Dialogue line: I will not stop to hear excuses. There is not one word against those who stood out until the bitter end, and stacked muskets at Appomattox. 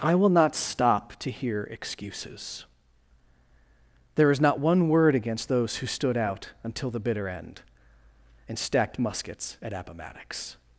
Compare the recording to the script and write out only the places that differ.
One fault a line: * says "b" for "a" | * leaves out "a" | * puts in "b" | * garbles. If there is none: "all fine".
all fine